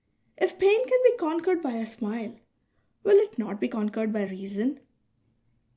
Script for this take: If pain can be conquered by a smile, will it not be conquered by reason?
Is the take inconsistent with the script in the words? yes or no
no